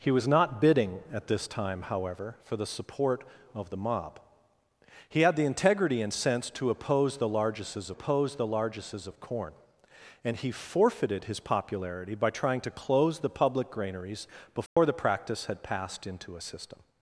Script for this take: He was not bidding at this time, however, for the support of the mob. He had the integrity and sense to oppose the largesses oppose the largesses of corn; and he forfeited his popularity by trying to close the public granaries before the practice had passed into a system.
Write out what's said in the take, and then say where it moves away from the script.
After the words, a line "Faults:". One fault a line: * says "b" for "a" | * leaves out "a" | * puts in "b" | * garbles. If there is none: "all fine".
He was not bidding at this time, however, for the support of the mob. He had the integrity and sense to oppose the largesses oppose the largesses of corn; and he forfeited his popularity by trying to close the public granaries before the practice had passed into a system.
Faults:
all fine